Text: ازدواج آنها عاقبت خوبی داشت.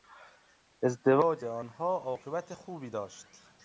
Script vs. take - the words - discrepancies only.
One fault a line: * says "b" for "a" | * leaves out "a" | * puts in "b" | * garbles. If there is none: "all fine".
all fine